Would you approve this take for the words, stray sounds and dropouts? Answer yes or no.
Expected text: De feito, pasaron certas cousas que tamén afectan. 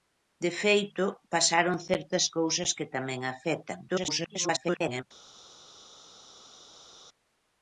no